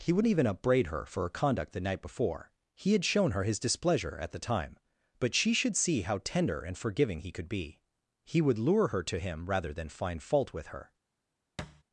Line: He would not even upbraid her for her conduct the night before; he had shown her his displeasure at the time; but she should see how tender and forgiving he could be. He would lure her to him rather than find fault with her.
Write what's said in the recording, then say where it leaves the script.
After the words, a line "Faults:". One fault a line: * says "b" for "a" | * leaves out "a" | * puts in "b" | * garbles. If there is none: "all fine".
He would even upbraid her for her conduct the night before; he had shown her his displeasure at the time; but she should see how tender and forgiving he could be. He would lure her to him rather than find fault with her.
Faults:
* leaves out "not"